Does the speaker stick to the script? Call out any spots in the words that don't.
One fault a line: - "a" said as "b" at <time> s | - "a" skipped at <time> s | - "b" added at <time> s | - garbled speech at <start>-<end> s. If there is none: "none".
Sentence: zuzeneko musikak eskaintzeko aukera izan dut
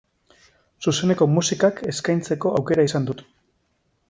none